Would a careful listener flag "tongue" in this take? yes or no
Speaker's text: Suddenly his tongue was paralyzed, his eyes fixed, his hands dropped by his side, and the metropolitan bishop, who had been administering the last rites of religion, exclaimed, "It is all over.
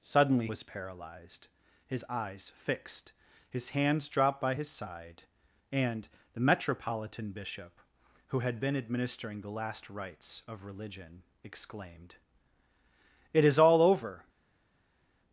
yes